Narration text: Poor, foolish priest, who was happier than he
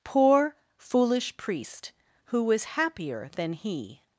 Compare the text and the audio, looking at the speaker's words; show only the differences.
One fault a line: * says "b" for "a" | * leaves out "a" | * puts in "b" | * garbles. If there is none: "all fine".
all fine